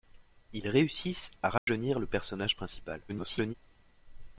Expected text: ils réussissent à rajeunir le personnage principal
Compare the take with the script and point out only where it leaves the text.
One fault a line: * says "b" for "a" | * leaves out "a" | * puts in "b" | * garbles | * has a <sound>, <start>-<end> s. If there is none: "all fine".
* has a dropout, 1.6-1.7 s
* garbles